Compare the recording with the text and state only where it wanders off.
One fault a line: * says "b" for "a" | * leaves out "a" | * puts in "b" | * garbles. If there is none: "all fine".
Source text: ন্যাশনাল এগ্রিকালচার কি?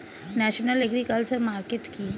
* puts in "মার্কেট"